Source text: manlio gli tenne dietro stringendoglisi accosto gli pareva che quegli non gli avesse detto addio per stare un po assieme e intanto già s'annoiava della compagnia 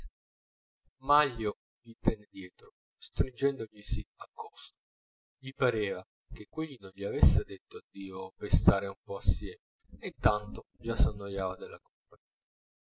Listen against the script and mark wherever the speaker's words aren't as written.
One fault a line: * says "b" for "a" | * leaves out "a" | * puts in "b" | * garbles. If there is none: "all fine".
all fine